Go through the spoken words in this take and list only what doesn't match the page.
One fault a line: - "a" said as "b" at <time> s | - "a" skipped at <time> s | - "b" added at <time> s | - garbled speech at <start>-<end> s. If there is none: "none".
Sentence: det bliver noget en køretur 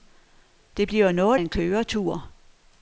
none